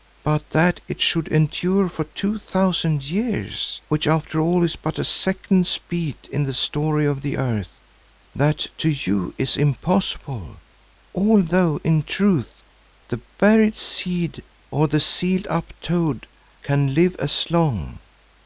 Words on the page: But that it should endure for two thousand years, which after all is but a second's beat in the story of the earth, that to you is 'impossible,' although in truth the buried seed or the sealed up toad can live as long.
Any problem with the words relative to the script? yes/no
no